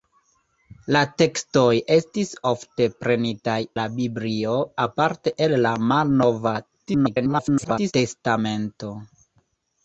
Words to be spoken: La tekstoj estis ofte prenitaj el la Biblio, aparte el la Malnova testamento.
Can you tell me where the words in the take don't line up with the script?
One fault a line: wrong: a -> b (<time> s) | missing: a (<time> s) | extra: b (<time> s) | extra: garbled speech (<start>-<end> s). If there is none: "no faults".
missing: el (3.6 s)
extra: garbled speech (6.9-7.9 s)